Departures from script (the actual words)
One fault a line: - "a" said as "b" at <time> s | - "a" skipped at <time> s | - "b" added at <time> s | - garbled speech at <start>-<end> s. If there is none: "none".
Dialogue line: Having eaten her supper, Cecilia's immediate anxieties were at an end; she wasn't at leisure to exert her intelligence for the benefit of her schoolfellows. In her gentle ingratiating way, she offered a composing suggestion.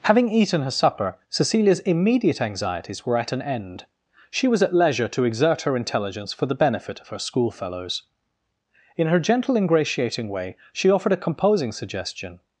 - "wasn't" said as "was" at 4.5 s